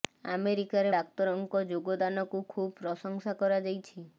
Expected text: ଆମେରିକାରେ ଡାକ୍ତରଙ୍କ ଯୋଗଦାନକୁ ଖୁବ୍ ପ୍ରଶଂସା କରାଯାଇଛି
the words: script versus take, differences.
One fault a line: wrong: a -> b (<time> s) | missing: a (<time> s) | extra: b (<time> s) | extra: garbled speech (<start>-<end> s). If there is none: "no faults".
no faults